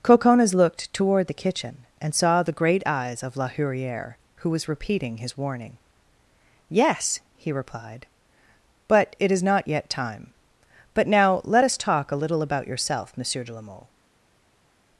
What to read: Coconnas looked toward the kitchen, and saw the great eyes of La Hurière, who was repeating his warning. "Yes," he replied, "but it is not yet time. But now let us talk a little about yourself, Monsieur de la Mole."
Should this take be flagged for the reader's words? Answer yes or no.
no